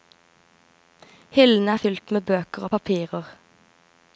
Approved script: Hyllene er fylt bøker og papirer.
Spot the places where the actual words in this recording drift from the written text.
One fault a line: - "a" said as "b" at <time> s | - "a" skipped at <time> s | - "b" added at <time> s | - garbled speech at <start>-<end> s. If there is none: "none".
- "med" added at 2.1 s